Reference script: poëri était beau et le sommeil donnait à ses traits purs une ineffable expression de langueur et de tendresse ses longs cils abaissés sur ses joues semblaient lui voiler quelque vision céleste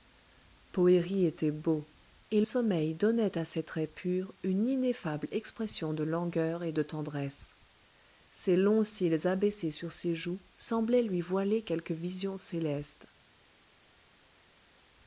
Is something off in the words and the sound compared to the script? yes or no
yes